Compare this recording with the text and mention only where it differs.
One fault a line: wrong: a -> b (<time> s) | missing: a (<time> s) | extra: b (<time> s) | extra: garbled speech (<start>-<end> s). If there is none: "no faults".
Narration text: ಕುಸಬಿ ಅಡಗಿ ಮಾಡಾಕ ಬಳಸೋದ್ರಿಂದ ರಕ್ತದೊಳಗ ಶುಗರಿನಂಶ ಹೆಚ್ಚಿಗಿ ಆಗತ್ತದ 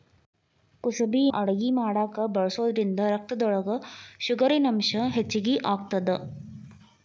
no faults